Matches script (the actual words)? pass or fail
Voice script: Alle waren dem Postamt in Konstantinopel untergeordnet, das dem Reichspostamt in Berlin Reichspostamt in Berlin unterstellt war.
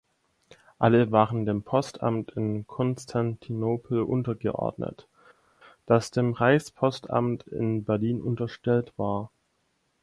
fail